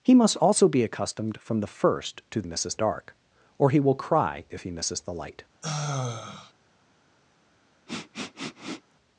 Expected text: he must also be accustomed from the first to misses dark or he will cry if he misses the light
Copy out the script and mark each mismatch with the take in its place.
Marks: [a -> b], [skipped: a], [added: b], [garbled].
he must also be accustomed from the first to misses dark or he will cry if he misses the light